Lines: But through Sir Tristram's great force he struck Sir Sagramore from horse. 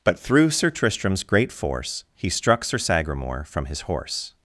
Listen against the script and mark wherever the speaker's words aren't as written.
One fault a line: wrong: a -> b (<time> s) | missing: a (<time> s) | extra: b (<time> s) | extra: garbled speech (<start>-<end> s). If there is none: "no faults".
extra: his (3.6 s)